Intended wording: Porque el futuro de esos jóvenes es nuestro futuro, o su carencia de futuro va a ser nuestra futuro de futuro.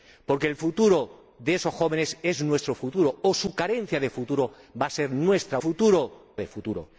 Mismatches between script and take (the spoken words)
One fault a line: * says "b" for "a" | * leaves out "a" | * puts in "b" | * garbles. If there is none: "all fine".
all fine